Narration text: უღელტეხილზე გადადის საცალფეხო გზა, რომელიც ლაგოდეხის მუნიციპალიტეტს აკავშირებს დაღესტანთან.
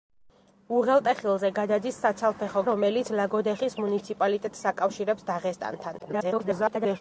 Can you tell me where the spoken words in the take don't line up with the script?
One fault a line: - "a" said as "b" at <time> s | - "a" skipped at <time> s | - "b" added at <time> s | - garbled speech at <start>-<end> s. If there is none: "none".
- "გზა" skipped at 2.6 s
- garbled speech at 6.0-7.0 s